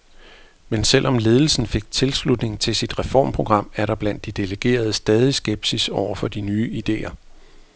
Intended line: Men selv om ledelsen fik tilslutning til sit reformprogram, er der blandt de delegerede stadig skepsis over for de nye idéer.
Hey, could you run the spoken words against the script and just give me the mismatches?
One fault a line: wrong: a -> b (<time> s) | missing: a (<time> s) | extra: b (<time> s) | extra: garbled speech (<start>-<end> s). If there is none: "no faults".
no faults